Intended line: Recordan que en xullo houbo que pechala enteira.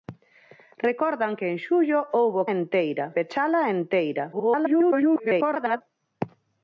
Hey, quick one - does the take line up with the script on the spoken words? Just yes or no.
no